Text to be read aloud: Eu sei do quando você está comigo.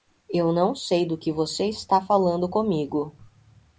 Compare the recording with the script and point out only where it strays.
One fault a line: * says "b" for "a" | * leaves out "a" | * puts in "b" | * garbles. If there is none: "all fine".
* puts in "não"
* says "que" for "quando"
* puts in "falando"